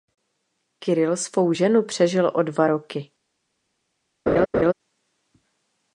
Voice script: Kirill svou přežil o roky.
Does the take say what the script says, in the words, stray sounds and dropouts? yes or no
no